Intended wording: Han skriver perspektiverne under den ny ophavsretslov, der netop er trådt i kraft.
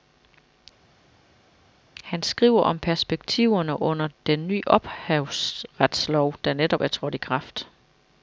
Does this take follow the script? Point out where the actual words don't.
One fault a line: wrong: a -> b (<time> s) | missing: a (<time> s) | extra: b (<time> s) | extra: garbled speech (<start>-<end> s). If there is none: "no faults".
extra: om (2.6 s)